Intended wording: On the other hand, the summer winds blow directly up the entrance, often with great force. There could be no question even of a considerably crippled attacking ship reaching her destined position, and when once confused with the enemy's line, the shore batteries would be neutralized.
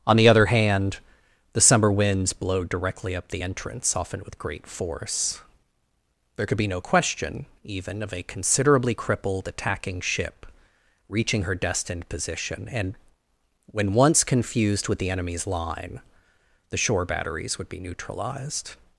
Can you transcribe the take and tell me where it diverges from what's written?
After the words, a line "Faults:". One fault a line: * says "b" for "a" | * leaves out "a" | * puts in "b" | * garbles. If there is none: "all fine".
On the other hand, the summer winds blow directly up the entrance, often with great force. There could be no question even of a considerably crippled attacking ship reaching her destined position, and when once confused with the enemy's line, the shore batteries would be neutralized.
Faults:
all fine